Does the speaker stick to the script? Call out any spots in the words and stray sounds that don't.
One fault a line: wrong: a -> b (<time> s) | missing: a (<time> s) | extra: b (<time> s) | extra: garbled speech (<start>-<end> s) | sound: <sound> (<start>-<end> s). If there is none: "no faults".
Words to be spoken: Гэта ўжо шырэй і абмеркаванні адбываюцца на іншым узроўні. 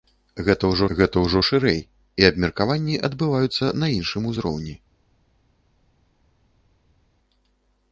extra: гэта ўжо (1.0 s)